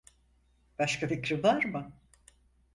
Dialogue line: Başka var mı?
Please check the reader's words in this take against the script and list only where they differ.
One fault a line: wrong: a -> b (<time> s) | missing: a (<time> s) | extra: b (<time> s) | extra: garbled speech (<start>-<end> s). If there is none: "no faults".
extra: fikrin (1.0 s)